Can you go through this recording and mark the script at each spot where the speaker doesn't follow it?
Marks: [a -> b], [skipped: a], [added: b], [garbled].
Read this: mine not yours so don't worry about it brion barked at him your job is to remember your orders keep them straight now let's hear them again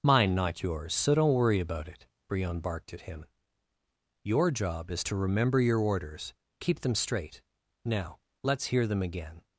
mine not yours so don't worry about it brion barked at him your job is to remember your orders keep them straight now let's hear them again